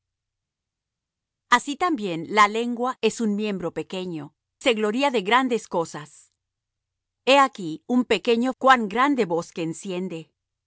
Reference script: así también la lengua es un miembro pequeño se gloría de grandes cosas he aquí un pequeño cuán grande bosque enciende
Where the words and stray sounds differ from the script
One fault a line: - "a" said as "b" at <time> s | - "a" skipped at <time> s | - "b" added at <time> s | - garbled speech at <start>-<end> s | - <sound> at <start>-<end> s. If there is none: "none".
none